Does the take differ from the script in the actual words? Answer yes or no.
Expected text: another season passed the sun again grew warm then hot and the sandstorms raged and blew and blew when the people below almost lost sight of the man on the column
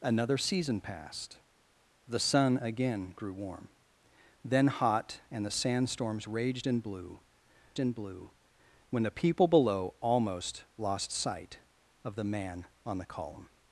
no